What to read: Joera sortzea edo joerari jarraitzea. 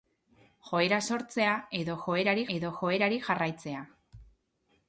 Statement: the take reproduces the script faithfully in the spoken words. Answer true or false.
false